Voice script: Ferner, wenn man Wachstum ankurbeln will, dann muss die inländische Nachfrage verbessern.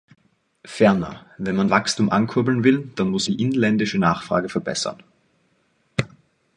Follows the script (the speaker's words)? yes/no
yes